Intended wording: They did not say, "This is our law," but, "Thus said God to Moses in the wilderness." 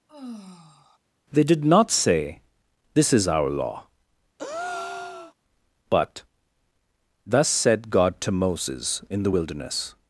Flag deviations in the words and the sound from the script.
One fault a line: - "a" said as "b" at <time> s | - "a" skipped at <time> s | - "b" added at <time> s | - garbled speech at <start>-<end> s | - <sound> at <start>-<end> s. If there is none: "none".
- sigh at 0.1-1.0 s
- breath at 4.4-5.3 s